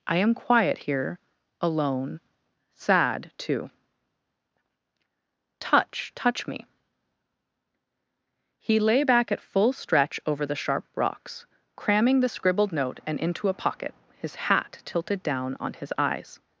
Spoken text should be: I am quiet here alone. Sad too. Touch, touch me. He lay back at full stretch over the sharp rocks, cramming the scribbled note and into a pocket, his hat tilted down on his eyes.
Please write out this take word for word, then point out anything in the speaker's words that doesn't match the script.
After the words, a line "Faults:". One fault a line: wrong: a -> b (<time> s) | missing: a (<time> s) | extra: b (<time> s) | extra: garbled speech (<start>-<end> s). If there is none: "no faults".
I am quiet here alone. Sad too. Touch, touch me. He lay back at full stretch over the sharp rocks, cramming the scribbled note and into a pocket, his hat tilted down on his eyes.
Faults:
no faults